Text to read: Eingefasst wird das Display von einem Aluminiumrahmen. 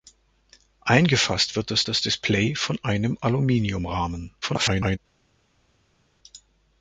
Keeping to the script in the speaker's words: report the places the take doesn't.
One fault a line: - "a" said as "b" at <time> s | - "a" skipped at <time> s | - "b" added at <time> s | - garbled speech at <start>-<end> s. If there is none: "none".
- "das" added at 1.9 s
- garbled speech at 4.4-5.0 s